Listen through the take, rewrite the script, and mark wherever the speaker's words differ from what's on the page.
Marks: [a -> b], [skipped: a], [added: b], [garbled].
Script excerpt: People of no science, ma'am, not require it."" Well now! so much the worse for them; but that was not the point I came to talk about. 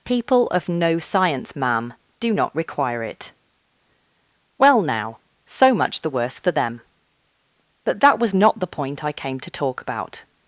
People of no science, ma'am, [added: do] not require it."" Well now! so much the worse for them; but that was not the point I came to talk about.